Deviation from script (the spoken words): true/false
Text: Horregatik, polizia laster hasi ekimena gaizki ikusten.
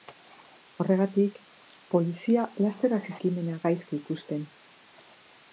false